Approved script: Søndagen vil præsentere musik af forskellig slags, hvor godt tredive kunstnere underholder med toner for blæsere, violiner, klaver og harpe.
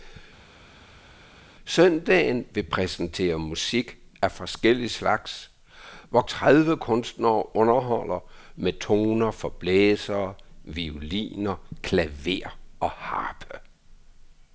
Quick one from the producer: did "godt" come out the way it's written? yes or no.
no